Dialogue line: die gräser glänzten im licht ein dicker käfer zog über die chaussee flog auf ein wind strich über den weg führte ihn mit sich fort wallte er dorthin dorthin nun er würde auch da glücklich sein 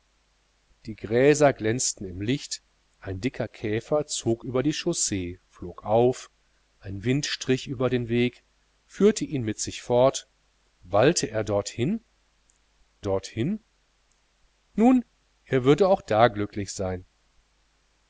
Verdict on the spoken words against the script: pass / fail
pass